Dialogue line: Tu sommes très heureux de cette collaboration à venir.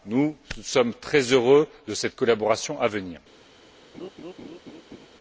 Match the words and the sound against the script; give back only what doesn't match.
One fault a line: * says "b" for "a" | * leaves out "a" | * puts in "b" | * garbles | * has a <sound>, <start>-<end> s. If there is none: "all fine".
* says "Nous" for "Tu"
* has a laugh, 3.9-5.1 s